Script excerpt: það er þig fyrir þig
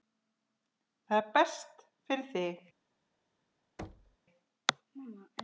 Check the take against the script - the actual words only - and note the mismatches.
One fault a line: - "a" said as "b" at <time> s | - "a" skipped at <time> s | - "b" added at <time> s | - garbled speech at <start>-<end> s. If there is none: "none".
- "þig" said as "best" at 1.3 s